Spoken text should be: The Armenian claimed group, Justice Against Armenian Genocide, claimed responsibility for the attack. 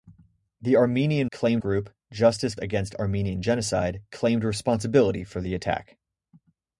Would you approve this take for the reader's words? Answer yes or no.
yes